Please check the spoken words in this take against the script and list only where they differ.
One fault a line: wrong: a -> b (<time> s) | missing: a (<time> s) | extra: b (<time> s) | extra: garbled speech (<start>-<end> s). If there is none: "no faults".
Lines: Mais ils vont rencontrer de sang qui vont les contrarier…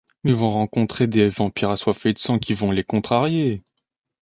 extra: des vampires assoiffés (1.1 s)